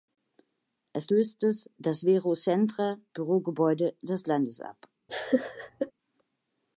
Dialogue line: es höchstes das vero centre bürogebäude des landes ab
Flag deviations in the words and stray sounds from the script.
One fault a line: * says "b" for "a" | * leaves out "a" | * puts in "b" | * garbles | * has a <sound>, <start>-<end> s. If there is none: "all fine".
* has a laugh, 5.1-5.9 s